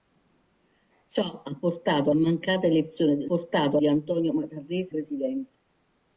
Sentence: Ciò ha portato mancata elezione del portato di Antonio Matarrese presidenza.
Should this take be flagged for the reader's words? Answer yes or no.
no